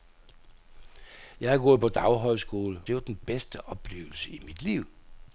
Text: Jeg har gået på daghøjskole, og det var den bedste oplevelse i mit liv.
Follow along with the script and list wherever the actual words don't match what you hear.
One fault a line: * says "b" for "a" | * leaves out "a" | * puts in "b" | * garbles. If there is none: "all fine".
* leaves out "og"